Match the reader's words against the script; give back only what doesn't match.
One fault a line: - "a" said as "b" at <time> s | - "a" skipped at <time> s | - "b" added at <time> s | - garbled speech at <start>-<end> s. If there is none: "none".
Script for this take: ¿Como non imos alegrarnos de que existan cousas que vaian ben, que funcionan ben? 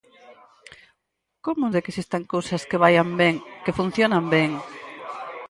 - "non imos alegrarnos" skipped at 1.6 s